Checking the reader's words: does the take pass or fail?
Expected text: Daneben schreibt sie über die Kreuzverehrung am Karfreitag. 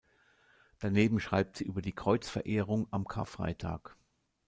pass